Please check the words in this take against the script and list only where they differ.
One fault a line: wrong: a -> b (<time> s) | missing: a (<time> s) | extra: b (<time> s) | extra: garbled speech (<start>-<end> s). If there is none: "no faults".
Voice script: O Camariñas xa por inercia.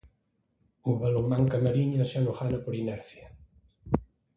extra: Balonmán (1.0 s)
extra: non gana (2.2 s)